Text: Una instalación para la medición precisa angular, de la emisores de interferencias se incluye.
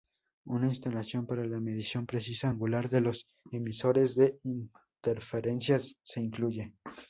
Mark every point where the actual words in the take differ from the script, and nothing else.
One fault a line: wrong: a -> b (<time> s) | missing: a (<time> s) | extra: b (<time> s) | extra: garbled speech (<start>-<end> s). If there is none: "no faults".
wrong: la -> los (3.0 s)